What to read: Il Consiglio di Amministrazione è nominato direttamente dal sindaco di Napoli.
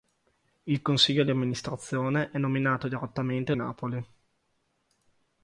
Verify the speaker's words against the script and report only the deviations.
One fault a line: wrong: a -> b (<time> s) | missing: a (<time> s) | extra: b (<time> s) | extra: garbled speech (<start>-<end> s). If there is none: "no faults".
missing: dal sindaco di (3.5 s)